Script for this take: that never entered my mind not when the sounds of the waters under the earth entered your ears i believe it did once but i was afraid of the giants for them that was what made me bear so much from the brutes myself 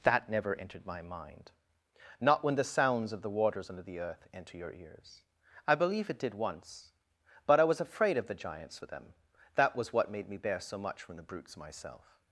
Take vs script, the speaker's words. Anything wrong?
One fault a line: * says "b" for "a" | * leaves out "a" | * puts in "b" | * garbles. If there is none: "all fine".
* says "enter" for "entered"